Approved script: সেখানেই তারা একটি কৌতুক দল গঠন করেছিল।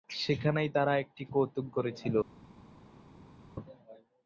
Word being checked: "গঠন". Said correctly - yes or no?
no